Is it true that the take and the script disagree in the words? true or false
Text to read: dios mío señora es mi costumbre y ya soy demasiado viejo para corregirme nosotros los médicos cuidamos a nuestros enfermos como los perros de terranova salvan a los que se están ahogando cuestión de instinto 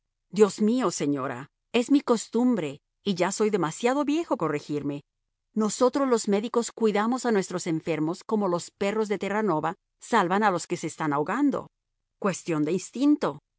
true